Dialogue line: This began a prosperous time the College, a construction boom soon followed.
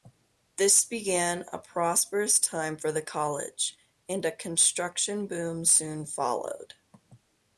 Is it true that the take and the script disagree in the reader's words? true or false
true